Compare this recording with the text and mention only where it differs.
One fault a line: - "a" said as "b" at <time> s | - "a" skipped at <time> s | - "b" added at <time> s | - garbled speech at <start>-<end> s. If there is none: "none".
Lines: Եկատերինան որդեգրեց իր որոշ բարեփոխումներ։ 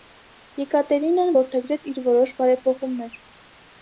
none